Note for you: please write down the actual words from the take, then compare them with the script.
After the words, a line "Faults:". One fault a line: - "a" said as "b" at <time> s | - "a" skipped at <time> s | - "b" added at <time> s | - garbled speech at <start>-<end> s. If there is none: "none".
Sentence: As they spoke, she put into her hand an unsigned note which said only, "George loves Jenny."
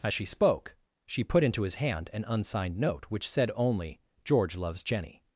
As she spoke, she put into his hand an unsigned note which said only, "George loves Jenny."
Faults:
- "they" said as "she" at 0.1 s
- "her" said as "his" at 1.6 s